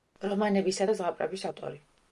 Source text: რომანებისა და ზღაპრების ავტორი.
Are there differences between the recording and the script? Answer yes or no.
no